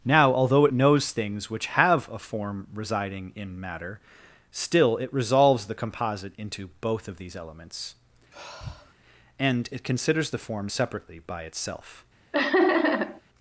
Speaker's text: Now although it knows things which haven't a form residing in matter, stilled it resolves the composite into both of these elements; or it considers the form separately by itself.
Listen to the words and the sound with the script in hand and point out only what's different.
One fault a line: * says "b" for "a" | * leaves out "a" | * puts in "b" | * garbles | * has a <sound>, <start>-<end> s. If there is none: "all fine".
* says "have" for "haven't"
* says "still" for "stilled"
* has a sigh, 8.3-8.9 s
* says "and" for "or"
* has a laugh, 12.3-13.2 s